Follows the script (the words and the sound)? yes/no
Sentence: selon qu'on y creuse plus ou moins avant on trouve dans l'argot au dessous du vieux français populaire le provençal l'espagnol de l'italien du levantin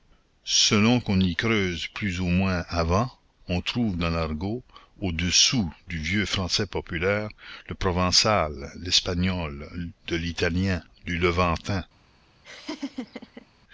no